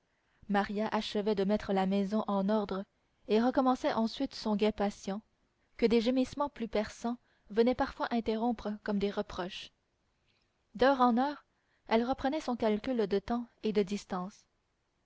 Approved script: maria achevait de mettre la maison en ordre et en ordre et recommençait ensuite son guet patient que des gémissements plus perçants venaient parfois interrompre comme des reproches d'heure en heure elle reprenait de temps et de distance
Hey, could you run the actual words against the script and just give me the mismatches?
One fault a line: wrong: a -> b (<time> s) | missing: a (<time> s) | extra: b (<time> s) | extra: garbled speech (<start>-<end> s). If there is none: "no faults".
missing: en ordre et (3.4 s)
extra: son calcul (12.4 s)